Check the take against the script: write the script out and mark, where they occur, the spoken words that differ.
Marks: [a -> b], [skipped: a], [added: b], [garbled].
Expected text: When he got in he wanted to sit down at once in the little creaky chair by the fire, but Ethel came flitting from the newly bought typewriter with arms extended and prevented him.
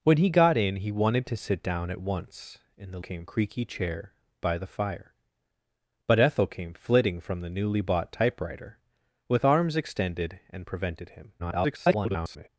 When he got in he wanted to sit down at once in the [little -> came] creaky chair by the fire, but Ethel came flitting from the newly bought typewriter with arms extended and prevented him. [garbled]